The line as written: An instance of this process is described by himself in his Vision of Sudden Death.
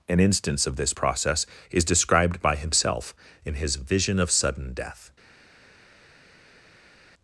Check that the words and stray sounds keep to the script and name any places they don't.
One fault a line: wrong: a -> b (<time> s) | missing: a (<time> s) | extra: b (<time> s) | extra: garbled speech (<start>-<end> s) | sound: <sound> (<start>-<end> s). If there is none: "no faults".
no faults